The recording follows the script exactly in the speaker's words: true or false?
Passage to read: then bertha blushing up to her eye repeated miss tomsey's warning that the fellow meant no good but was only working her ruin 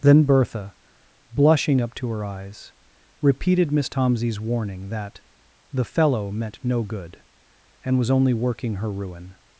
false